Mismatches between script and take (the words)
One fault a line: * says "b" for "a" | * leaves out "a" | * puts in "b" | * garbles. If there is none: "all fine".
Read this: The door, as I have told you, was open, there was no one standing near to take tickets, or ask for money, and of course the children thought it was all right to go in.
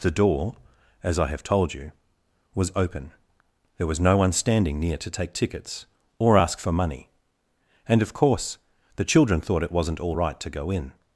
* says "wasn't" for "was"